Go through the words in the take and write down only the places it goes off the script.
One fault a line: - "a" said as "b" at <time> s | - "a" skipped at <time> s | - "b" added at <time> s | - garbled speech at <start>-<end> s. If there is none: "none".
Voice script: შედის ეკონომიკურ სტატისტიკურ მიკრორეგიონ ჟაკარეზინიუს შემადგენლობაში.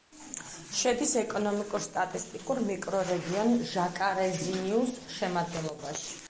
none